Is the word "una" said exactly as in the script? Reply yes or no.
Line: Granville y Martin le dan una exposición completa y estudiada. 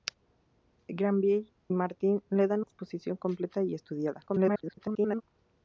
no